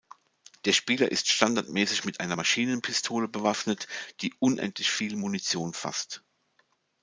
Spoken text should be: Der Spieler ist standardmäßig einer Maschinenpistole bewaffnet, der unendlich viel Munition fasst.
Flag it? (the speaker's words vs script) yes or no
yes